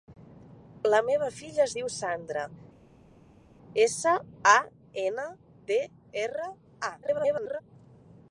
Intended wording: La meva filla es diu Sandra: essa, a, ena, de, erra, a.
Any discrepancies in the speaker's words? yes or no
yes